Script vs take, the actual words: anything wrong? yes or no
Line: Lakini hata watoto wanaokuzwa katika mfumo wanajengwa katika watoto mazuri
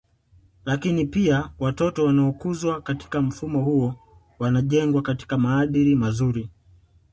yes